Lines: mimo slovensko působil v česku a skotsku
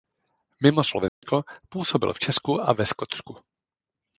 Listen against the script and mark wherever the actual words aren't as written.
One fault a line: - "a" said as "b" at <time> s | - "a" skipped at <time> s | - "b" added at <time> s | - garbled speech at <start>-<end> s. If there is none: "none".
- "ve" added at 2.7 s